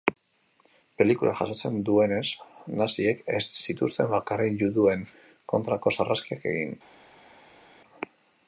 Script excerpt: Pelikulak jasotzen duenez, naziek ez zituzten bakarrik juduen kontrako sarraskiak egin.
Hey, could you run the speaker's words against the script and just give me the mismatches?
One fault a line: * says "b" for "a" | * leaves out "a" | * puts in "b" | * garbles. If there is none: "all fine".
all fine